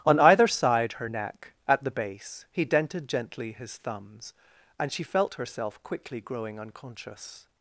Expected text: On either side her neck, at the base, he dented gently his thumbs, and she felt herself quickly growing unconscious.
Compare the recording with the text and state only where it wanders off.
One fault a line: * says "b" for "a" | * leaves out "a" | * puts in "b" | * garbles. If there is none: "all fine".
all fine